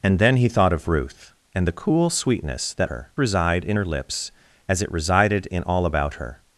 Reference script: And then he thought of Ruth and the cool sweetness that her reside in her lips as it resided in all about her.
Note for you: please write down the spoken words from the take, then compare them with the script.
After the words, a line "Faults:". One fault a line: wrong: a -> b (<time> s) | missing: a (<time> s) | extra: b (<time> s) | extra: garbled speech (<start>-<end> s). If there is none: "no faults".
And then he thought of Ruth and the cool sweetness that her reside in her lips as it resided in all about her.
Faults:
no faults